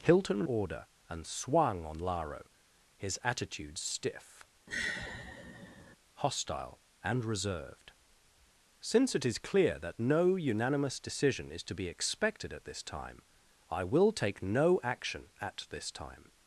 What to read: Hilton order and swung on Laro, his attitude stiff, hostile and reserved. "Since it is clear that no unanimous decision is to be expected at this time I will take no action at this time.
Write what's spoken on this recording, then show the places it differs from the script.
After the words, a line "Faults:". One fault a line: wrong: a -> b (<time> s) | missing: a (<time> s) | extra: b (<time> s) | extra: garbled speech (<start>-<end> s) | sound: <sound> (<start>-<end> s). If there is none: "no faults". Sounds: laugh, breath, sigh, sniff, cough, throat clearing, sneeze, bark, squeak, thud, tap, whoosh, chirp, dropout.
Hilton order and swung on Laro, his attitude stiff, hostile and reserved. "Since it is clear that no unanimous decision is to be expected at this time I will take no action at this time.
Faults:
sound: sigh (4.7-6.0 s)